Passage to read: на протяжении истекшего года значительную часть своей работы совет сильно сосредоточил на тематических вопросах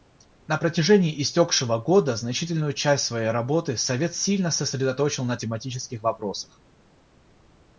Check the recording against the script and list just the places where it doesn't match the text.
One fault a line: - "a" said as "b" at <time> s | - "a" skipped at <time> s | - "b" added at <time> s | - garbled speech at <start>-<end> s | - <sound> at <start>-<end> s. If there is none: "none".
none